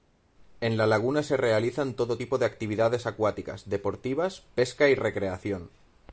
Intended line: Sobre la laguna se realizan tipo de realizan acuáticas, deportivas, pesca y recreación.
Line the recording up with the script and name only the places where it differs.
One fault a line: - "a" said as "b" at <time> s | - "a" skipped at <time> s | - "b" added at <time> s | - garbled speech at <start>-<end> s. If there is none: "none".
- "Sobre" said as "En" at 0.6 s
- "todo" added at 1.9 s
- "realizan" said as "actividades" at 2.4 s